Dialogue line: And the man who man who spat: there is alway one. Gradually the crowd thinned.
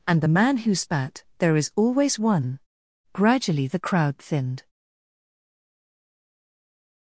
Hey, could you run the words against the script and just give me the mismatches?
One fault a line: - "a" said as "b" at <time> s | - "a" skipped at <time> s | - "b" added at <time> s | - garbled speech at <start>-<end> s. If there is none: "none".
- "man who" skipped at 0.7 s
- "alway" said as "always" at 1.8 s